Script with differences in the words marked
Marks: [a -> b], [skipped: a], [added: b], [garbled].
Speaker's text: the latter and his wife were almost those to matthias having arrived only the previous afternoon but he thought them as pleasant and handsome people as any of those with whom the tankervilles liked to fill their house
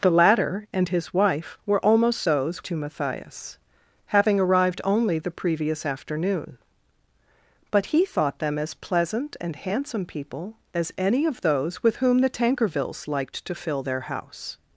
the latter and his wife were almost those to matthias having arrived only the previous afternoon but he thought them as pleasant and handsome people as any of those with whom the tankervilles liked to fill their house